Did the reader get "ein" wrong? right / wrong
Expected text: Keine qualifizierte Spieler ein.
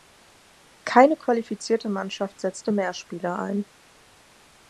right